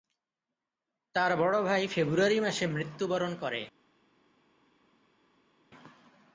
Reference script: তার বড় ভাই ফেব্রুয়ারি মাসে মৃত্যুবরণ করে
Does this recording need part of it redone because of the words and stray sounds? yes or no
no